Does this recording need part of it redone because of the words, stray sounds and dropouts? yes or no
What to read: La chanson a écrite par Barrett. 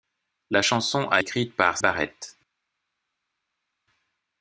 no